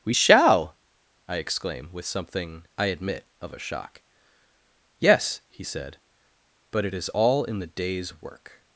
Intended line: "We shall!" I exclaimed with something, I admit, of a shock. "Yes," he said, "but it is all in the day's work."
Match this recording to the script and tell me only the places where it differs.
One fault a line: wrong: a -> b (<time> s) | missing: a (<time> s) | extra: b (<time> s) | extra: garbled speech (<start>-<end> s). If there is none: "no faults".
wrong: exclaimed -> exclaim (1.4 s)